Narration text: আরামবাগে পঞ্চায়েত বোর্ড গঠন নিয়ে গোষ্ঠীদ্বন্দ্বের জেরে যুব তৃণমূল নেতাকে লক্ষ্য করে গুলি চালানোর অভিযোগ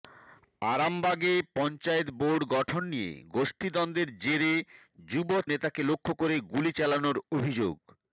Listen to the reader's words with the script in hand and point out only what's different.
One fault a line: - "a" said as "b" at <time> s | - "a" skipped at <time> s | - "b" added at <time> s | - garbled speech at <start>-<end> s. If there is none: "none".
- "তৃণমূল" skipped at 5.3 s